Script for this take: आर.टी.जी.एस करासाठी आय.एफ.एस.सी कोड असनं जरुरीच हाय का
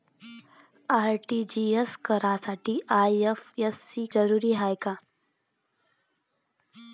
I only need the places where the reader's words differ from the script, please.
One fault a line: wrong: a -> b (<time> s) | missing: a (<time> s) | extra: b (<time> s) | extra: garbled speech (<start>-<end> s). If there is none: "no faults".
missing: कोड असनं (4.0 s)